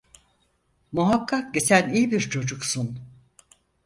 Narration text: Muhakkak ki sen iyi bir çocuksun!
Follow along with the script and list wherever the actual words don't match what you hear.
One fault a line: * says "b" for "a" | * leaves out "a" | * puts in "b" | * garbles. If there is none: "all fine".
all fine